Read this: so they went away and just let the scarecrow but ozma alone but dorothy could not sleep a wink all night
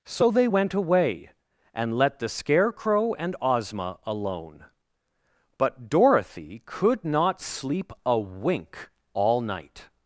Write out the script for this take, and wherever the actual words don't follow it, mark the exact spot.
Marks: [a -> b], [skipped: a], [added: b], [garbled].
so they went away and [skipped: just] let the scarecrow [but -> and] ozma alone but dorothy could not sleep a wink all night